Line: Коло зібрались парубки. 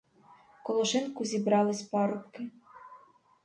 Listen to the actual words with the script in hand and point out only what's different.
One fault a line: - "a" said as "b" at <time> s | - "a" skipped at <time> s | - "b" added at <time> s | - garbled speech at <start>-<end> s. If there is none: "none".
- "шинку" added at 0.8 s